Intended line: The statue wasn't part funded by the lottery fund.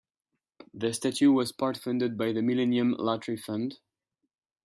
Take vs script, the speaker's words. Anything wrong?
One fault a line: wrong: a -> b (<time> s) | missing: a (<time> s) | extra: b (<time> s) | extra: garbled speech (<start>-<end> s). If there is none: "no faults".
wrong: wasn't -> was (1.3 s)
extra: millennium (2.4 s)